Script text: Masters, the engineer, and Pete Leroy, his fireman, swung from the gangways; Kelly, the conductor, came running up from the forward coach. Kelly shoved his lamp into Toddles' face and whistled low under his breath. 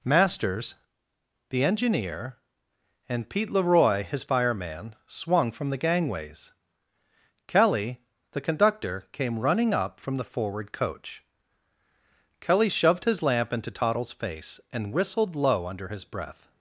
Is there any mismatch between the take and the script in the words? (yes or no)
no